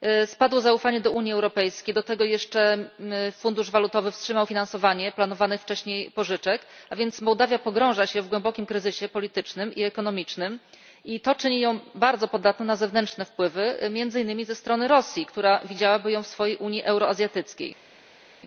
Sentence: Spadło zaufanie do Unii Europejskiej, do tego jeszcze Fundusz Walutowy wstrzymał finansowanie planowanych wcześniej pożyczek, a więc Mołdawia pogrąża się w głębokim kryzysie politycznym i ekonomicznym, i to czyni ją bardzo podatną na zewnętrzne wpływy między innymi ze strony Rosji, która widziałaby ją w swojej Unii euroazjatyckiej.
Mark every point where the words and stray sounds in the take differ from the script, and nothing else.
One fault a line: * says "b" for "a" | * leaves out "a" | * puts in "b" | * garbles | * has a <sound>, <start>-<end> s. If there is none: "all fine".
all fine